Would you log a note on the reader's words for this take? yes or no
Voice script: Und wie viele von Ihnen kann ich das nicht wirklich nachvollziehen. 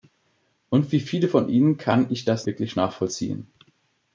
yes